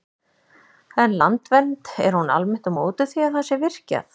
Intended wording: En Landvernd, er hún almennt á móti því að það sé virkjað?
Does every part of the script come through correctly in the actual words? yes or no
yes